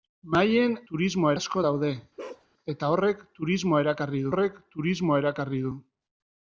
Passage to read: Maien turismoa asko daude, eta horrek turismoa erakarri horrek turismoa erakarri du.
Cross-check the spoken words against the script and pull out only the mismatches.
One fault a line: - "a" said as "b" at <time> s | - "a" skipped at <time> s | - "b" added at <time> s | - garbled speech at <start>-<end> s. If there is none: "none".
none